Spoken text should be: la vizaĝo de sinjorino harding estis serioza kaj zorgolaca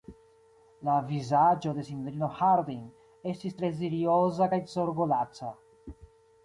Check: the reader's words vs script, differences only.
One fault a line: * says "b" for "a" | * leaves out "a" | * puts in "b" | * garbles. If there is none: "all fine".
* puts in "tre"